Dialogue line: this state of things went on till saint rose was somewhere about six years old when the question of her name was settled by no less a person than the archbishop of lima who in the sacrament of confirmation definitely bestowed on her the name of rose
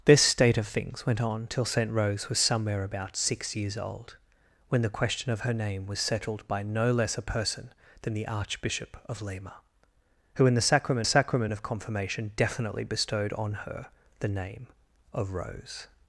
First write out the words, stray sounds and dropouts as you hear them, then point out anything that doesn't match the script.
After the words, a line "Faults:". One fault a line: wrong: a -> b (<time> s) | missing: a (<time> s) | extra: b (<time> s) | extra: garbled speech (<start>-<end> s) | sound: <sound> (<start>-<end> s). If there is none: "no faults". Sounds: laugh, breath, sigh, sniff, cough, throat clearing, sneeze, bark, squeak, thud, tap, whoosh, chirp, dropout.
this state of things went on till saint rose was somewhere about six years old when the question of her name was settled by no less a person than the archbishop of lima who in the sacrament sacrament of confirmation definitely bestowed on her the name of rose
Faults:
extra: sacrament (11.0 s)